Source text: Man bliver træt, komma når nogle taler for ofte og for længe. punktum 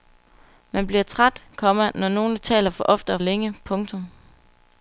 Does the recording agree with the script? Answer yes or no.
no